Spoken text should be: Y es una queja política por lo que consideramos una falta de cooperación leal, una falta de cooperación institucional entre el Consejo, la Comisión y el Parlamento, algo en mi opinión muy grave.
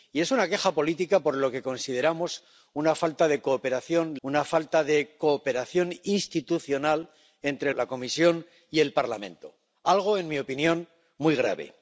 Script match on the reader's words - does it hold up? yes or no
no